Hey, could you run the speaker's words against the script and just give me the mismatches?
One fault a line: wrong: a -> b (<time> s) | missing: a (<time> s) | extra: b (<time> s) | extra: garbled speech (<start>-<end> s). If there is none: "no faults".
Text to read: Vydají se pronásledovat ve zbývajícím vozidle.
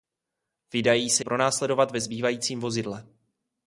no faults